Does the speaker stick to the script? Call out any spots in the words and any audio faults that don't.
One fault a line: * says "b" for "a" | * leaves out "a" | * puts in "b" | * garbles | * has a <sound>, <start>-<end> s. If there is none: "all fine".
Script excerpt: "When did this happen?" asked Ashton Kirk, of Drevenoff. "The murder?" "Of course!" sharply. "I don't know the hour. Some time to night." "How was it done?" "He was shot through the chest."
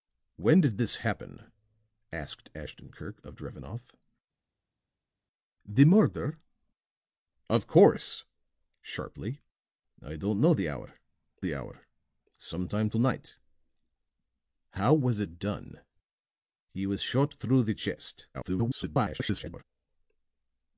* puts in "the hour"
* garbles